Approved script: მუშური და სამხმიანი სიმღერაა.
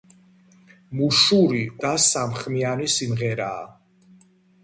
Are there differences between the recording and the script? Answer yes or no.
no